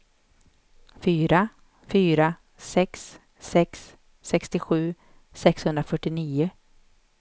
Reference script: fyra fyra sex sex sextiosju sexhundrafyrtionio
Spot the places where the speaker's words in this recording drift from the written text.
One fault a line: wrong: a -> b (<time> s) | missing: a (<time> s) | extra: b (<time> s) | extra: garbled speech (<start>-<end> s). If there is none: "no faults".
no faults